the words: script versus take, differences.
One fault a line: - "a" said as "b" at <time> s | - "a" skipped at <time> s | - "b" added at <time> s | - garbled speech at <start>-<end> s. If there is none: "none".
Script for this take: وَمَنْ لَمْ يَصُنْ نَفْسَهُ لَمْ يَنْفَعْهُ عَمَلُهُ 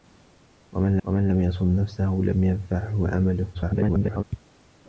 - "وَمَنْ" added at 1.0 s
- garbled speech at 3.5-4.2 s